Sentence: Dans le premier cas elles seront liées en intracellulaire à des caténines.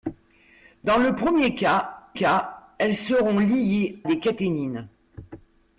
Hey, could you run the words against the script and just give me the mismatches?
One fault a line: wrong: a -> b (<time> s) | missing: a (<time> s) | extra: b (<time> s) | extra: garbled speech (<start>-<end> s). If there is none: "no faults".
extra: cas (2.1 s)
missing: en intracellulaire à (4.0 s)